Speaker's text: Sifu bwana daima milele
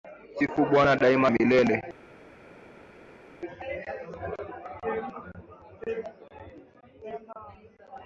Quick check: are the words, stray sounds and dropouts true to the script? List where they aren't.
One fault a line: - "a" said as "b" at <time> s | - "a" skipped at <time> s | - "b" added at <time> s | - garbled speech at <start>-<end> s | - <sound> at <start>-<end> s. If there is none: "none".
none